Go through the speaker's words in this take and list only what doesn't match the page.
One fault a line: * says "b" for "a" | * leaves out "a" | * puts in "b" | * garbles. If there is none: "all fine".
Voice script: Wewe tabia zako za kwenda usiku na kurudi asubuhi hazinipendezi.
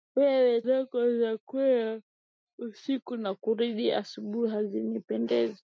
* leaves out "tabia"